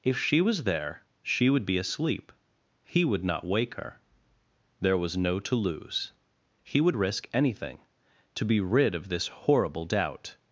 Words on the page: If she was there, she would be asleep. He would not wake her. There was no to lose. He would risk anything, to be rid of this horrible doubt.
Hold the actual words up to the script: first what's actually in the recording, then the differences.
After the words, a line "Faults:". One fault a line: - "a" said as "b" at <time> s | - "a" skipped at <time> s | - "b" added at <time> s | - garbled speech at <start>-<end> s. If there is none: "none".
If she was there, she would be asleep. He would not wake her. There was no to lose. He would risk anything, to be rid of this horrible doubt.
Faults:
none